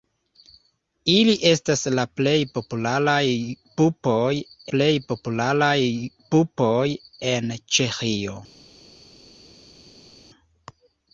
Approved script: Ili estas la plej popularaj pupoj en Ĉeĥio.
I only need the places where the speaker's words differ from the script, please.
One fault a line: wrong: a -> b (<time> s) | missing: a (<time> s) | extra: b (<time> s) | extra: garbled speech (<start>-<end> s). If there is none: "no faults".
extra: plej popularaj pupoj (4.7 s)